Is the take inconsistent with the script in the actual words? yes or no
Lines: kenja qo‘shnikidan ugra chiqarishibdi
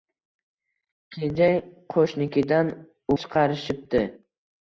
yes